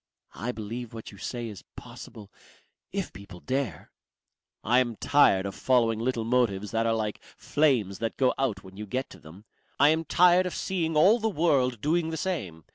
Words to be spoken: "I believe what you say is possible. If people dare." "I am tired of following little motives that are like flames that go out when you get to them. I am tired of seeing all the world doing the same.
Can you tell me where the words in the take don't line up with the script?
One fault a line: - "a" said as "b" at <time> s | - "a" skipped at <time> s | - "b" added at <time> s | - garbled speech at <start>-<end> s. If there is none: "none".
none